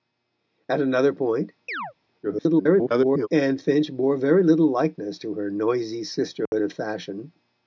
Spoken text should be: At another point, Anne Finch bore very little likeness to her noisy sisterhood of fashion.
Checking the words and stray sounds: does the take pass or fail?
fail